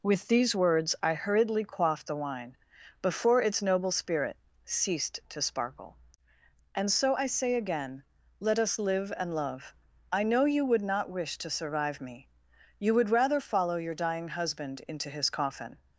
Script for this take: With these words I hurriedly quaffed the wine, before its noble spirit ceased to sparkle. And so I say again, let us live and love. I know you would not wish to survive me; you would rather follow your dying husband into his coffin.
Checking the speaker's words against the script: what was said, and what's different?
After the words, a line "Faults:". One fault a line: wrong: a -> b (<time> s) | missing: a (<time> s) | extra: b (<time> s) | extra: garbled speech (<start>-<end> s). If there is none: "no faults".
With these words I hurriedly quaffed the wine, before its noble spirit ceased to sparkle. And so I say again, let us live and love. I know you would not wish to survive me; you would rather follow your dying husband into his coffin.
Faults:
no faults